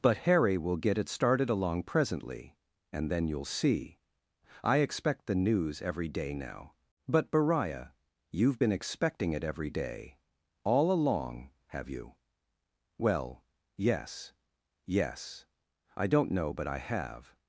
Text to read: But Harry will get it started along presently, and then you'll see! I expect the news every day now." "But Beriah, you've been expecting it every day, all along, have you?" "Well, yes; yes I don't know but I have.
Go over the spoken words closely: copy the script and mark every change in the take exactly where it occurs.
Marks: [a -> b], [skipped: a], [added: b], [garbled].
But Harry will get it started along presently, and then you'll see! I expect the news every day now." "But Beriah, you've been expecting it every day, all along, have you?" "Well, yes; yes I don't know but I have.